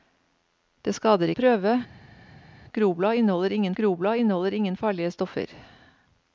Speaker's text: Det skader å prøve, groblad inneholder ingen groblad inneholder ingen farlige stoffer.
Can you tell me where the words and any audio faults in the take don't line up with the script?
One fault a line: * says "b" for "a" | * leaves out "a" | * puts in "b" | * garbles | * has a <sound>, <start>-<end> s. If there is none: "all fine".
all fine